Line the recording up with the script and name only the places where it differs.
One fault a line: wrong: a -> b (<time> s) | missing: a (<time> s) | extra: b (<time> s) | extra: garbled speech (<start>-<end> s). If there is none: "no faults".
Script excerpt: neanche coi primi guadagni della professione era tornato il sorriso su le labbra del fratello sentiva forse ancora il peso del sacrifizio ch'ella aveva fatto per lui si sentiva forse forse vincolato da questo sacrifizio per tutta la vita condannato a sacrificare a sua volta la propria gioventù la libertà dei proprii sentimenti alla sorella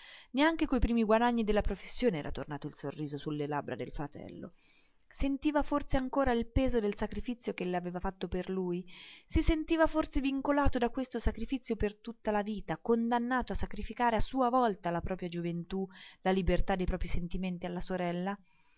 missing: forse (10.2 s)